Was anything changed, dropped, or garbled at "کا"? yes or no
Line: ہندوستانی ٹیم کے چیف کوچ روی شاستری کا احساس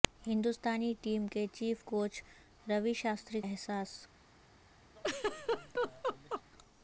yes